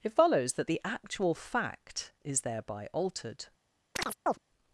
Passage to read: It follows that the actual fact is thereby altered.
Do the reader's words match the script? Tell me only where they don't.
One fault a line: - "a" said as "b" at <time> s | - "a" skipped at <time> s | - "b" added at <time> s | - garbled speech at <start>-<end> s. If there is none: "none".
none